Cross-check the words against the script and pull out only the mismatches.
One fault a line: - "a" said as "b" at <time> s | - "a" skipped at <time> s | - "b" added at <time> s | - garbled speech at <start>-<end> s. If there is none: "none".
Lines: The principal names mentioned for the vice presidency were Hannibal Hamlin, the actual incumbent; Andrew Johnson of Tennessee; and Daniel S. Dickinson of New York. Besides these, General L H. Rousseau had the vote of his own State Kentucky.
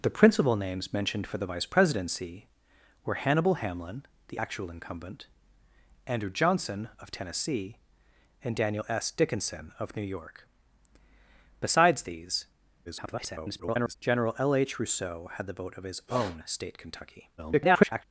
- garbled speech at 12.9-13.9 s
- garbled speech at 17.4-18.0 s